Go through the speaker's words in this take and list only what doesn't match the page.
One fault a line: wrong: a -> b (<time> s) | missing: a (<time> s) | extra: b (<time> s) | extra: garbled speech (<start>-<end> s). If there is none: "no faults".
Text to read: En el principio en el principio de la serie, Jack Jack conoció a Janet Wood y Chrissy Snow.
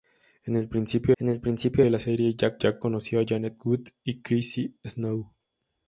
no faults